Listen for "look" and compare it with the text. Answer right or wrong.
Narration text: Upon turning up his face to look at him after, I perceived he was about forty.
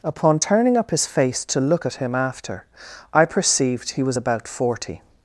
right